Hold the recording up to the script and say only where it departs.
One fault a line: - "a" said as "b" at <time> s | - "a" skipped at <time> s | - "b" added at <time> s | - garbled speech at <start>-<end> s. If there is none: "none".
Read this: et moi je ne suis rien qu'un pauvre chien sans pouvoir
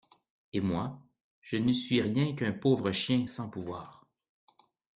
none